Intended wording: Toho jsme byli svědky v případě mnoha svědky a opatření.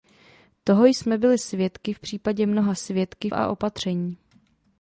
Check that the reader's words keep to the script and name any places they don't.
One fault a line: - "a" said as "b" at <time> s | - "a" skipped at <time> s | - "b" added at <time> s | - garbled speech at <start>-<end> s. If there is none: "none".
none